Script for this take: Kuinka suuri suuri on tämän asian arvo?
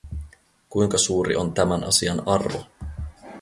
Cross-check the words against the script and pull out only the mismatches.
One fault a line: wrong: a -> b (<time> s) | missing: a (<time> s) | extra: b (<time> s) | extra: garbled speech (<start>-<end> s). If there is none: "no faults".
missing: suuri (1.4 s)